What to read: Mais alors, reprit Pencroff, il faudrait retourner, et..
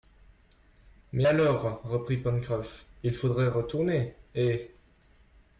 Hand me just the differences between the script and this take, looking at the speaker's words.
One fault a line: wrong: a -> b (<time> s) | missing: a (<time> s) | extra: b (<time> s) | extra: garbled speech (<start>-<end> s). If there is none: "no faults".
no faults